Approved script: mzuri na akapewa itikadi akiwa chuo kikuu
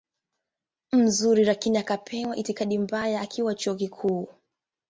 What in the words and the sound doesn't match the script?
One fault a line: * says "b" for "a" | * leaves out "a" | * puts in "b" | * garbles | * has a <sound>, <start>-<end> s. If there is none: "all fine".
* says "lakini" for "na"
* puts in "mbaya"